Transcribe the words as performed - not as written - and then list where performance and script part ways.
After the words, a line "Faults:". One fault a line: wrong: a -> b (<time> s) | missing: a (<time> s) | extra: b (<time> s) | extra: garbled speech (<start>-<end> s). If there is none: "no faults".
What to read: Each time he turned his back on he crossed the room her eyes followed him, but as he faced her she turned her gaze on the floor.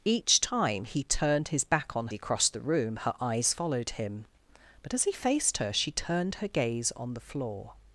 Each time he turned his back on he crossed the room her eyes followed him, but as he faced her she turned her gaze on the floor.
Faults:
no faults